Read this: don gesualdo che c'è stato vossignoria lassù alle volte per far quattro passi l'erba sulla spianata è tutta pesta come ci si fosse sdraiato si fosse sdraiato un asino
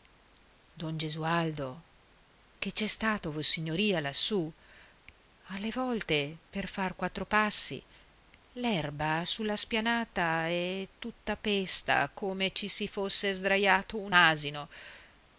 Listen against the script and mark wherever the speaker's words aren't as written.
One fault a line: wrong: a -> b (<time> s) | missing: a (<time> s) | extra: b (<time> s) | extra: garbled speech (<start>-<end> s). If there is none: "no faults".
missing: si fosse sdraiato (14.0 s)